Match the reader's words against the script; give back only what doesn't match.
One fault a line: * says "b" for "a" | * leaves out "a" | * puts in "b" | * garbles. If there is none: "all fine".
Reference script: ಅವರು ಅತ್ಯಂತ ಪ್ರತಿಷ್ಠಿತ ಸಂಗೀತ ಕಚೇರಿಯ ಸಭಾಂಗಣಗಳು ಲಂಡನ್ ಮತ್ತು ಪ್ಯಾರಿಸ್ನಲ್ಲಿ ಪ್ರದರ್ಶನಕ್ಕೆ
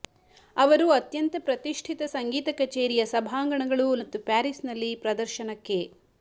* leaves out "ಲಂಡನ್"